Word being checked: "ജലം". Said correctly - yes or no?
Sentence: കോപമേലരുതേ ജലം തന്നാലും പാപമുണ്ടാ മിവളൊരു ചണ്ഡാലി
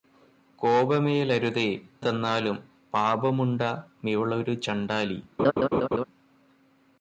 no